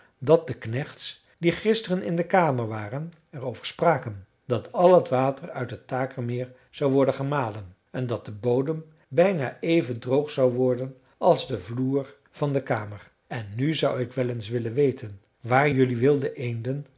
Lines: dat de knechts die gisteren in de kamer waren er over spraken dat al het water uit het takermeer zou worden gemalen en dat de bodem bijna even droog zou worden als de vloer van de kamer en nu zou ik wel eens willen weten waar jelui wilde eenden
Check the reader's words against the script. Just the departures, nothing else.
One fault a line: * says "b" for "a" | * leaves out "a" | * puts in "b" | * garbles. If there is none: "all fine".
all fine